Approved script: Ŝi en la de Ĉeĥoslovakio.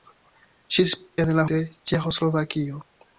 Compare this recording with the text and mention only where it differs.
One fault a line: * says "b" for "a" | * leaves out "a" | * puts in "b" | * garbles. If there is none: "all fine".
all fine